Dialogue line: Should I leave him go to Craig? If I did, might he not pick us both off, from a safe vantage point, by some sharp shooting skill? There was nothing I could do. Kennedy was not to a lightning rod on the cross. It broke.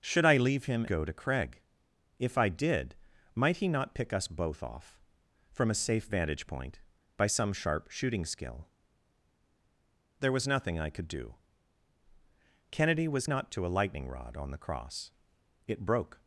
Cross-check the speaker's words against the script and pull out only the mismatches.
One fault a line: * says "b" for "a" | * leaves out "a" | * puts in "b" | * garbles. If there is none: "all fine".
all fine